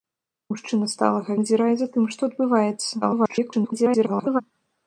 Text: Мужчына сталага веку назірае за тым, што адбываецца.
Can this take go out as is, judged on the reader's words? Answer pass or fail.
fail